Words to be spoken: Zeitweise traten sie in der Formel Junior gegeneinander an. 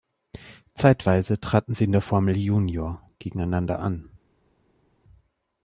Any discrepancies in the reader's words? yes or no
no